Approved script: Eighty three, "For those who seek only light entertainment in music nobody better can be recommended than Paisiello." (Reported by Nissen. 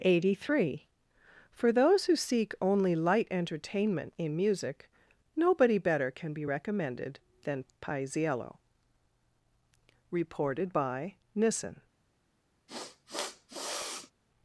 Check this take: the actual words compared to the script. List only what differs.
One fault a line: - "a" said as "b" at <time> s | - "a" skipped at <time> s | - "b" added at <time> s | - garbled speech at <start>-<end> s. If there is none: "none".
none